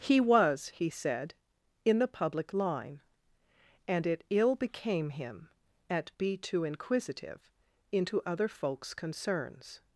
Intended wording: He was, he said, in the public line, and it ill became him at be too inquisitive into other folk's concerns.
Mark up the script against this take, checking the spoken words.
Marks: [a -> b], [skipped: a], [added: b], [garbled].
He was, he said, in the public line, and it ill became him at be too inquisitive into other folk's concerns.